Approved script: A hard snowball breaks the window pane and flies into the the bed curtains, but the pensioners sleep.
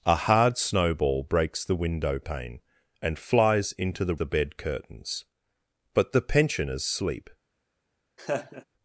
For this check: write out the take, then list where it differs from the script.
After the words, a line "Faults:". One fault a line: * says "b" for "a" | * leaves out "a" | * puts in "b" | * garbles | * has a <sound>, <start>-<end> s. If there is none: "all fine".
A hard snowball breaks the window pane and flies into the the bed curtains, but the pensioners sleep.
Faults:
* has a laugh, 8.2-8.6 s